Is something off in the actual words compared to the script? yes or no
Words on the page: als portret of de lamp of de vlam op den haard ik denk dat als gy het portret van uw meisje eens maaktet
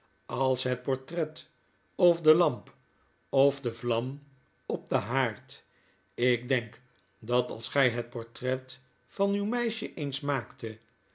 yes